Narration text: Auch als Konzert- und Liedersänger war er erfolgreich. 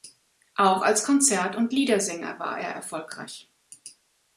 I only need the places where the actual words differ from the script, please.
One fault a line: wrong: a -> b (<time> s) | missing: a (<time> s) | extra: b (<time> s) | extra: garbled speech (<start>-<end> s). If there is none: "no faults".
no faults